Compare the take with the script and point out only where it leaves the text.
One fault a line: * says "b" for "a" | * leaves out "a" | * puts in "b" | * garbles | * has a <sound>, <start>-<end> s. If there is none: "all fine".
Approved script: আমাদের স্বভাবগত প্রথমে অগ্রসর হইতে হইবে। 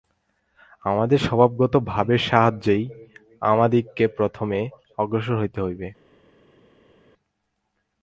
* puts in "ভাবের সাহায্যেই আমাদিগকে"